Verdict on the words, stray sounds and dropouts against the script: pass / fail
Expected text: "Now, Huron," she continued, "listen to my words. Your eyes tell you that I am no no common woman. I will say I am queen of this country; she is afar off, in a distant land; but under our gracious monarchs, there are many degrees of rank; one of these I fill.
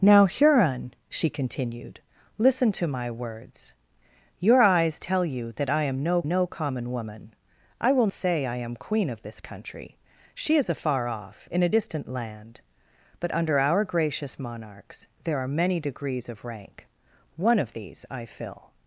pass